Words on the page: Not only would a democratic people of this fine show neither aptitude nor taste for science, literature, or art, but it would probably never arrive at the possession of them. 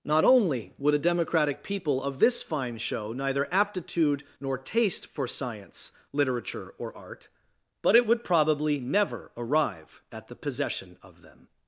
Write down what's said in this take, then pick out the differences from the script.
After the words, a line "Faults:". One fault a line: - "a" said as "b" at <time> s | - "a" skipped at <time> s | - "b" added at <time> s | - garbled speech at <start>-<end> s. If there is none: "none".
Not only would a democratic people of this fine show neither aptitude nor taste for science, literature, or art, but it would probably never arrive at the possession of them.
Faults:
none